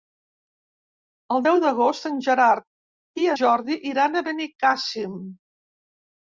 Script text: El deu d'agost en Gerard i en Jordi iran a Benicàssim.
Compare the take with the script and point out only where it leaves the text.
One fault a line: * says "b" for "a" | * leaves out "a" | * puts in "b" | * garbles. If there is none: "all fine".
* leaves out "en"